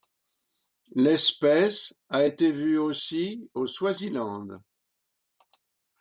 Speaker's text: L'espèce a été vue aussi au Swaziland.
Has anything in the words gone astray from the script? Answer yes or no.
no